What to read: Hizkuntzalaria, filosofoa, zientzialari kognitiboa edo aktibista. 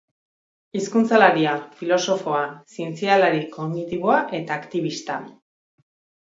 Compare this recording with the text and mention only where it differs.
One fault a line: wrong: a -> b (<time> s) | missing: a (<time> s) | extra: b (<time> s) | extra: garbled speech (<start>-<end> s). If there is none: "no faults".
wrong: edo -> eta (4.4 s)